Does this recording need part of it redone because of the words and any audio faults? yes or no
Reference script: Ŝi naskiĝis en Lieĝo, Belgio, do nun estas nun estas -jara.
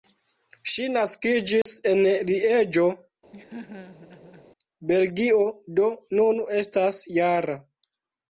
yes